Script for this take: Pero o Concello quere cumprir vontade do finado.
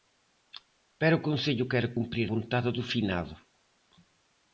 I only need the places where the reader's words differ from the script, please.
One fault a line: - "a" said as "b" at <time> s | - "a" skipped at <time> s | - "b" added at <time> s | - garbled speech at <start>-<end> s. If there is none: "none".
none